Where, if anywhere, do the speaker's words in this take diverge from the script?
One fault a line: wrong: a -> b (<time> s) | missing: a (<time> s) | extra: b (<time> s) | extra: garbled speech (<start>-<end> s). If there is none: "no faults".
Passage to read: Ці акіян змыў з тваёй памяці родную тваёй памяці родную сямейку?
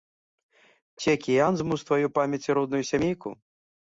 missing: тваёй памяці родную (2.8 s)